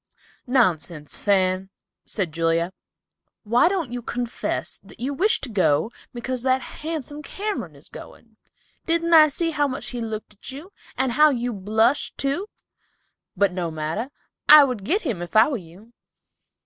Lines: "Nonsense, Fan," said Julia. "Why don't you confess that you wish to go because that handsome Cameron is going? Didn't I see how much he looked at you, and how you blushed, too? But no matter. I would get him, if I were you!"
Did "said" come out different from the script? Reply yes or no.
no